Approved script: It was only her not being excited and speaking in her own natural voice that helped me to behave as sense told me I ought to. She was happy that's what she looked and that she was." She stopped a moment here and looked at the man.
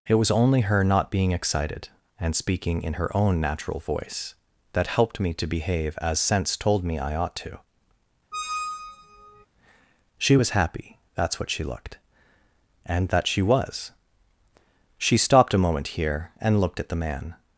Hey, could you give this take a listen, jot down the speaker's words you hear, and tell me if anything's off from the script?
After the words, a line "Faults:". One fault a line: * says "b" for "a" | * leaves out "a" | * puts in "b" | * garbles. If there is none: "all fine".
It was only her not being excited and speaking in her own natural voice that helped me to behave as sense told me I ought to. She was happy that's what she looked and that she was." She stopped a moment here and looked at the man.
Faults:
all fine